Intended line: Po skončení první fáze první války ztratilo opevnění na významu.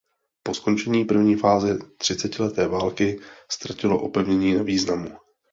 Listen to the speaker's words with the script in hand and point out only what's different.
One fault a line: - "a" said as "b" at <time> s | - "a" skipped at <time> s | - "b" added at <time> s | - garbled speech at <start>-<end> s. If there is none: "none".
- "první" said as "třicetileté" at 2.0 s